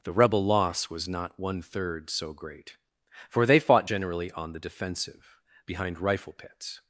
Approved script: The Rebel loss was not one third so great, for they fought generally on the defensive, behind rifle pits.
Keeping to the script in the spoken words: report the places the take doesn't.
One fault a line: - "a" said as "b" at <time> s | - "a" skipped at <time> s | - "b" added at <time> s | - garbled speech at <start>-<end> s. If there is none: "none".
none